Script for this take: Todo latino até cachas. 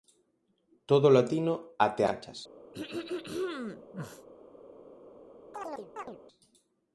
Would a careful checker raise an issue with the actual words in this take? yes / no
no